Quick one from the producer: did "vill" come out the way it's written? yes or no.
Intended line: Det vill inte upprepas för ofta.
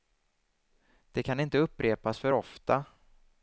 no